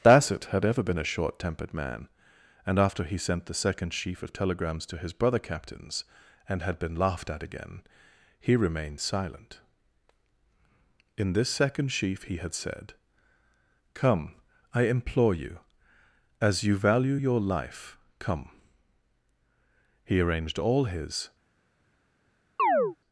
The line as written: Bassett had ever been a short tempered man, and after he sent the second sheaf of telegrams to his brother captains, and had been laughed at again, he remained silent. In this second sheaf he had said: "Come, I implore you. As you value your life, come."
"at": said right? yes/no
yes